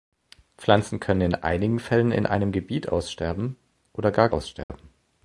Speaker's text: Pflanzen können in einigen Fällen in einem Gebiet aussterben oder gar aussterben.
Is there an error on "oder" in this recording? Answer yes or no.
no